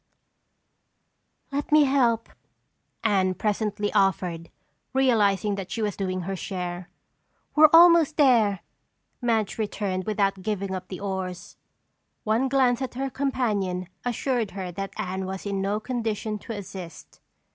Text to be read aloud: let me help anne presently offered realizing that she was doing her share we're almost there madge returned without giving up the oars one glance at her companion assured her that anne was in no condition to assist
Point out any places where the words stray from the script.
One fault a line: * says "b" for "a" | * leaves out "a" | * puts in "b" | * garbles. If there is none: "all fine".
all fine